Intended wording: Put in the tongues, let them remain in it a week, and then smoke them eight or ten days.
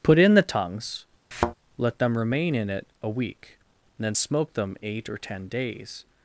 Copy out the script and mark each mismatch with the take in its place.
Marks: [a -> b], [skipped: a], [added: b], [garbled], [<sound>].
Put in the tongues, [thud] let them remain in it a week, and then smoke them eight or ten days.